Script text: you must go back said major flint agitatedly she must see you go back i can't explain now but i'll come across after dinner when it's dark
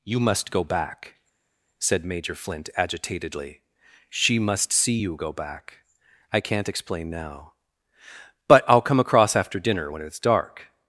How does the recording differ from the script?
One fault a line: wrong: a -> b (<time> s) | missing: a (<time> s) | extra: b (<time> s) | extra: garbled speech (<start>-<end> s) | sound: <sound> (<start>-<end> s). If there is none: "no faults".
no faults